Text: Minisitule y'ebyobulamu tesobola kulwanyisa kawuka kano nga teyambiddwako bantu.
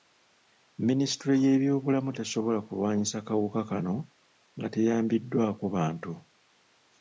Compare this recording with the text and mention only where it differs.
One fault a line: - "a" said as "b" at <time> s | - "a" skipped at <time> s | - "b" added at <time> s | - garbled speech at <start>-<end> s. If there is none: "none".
none